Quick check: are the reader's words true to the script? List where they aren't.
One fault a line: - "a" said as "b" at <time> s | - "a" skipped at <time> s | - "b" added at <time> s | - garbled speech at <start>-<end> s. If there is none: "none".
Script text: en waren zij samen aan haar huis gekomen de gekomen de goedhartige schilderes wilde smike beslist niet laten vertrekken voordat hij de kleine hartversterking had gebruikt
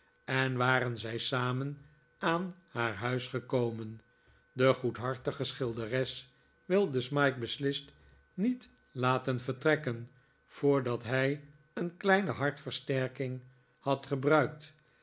- "gekomen de" skipped at 4.7 s
- "de" said as "een" at 11.7 s